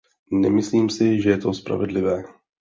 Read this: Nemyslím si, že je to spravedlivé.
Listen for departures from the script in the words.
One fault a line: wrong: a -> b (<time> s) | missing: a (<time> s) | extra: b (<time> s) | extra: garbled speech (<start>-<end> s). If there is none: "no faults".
no faults